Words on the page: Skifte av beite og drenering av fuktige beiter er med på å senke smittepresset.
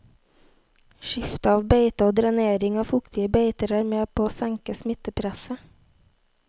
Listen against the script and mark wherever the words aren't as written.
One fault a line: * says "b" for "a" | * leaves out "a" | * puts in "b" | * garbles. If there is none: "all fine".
all fine